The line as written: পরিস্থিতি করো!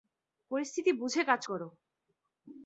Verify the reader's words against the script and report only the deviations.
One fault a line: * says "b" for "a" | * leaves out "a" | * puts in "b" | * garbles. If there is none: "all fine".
* puts in "বুঝে কাজ"